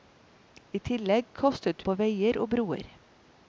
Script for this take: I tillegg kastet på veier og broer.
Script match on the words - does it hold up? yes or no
yes